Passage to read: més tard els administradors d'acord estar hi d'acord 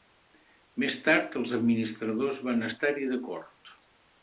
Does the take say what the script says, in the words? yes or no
no